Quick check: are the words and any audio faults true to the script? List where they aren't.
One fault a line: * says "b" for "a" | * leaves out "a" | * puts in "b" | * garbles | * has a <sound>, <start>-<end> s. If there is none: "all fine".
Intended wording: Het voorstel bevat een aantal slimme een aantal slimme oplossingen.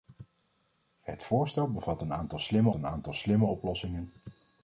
all fine